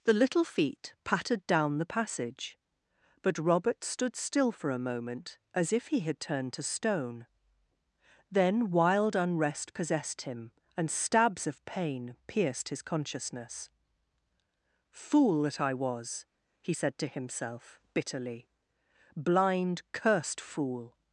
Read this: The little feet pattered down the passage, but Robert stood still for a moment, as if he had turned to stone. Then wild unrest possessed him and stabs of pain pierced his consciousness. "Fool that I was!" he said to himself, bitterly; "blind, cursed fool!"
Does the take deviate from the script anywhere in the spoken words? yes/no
no